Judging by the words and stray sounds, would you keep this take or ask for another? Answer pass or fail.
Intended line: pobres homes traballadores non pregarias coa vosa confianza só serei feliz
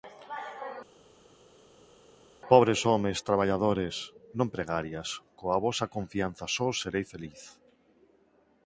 pass